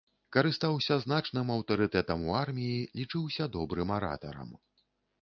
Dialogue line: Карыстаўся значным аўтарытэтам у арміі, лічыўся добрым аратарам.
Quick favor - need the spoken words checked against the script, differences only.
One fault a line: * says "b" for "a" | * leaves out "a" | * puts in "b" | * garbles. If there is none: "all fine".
all fine